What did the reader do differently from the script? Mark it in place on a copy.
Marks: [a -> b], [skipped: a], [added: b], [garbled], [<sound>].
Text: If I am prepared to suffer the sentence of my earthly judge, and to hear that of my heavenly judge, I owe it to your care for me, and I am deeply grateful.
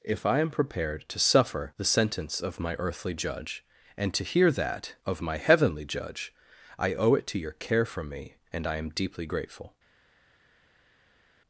If I am prepared to suffer the sentence of my earthly judge, and to hear that of my heavenly judge, I owe it to your care for me, and I am deeply grateful.